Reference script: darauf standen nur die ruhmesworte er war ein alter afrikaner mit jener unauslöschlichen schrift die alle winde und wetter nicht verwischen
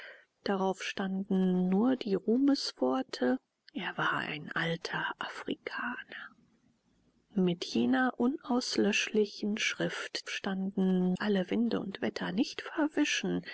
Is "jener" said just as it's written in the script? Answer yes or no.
yes